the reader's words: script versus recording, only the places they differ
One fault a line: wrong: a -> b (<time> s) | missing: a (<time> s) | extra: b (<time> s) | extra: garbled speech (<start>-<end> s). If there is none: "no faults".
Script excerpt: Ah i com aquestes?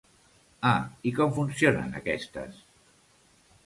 extra: funcionen (1.4 s)